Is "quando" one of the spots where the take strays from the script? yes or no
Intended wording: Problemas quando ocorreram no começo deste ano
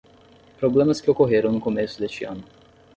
yes